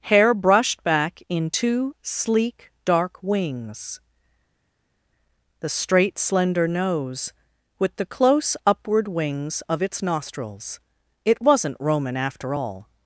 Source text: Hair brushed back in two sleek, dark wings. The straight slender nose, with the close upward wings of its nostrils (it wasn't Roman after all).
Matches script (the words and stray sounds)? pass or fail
pass